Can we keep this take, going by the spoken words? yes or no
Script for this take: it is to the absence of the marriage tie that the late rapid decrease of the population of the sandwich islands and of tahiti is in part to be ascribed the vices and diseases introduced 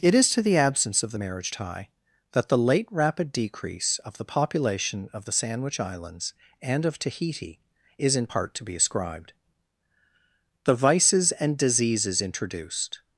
yes